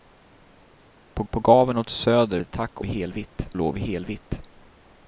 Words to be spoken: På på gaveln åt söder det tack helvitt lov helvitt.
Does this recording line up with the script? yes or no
yes